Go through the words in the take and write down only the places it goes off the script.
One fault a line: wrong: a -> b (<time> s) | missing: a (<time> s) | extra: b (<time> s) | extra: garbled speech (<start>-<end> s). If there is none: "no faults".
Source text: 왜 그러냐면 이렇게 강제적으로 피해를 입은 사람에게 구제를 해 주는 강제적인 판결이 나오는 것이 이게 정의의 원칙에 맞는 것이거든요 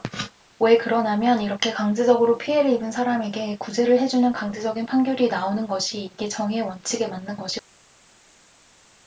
no faults